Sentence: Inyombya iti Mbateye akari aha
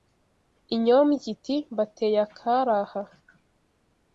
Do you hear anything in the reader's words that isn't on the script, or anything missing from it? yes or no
no